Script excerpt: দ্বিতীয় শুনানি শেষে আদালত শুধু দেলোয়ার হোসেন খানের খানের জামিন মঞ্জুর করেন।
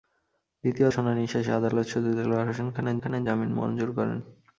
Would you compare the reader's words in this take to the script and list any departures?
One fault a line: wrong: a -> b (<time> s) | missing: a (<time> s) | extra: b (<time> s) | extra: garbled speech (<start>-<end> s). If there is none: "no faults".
no faults